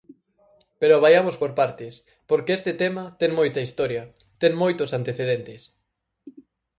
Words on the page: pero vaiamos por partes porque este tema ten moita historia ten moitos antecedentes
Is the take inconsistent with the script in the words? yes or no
no